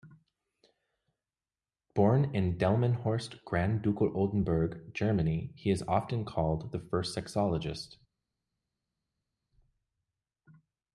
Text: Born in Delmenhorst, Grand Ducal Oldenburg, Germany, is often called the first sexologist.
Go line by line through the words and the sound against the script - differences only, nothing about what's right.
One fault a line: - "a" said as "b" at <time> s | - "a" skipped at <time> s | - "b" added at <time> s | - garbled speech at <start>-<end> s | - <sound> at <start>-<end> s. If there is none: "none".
- "he" added at 5.5 s